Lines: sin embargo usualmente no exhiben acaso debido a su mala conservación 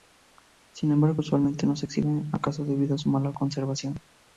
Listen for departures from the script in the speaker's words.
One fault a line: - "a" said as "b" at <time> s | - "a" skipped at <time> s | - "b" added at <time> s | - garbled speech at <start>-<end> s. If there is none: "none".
- "se" added at 1.7 s